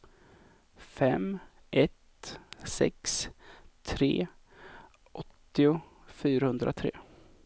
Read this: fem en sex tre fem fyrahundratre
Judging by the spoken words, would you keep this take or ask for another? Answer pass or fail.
fail